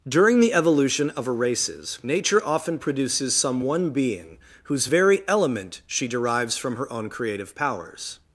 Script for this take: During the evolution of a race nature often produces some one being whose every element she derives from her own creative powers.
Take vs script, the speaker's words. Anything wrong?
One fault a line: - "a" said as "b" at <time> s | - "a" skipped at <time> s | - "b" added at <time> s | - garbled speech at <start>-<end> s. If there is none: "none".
- "race" said as "races" at 1.3 s
- "every" said as "very" at 4.8 s